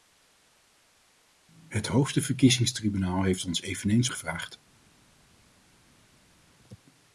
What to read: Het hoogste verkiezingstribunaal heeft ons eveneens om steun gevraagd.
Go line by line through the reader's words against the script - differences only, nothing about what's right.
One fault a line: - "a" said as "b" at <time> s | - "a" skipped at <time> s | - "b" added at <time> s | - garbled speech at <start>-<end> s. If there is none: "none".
- "om steun" skipped at 4.1 s